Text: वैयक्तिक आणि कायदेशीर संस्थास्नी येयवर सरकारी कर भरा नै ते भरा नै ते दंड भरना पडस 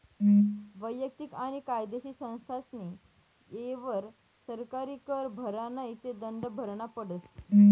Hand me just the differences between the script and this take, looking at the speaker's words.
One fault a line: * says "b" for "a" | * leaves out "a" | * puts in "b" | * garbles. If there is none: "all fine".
* leaves out "भरा नै ते"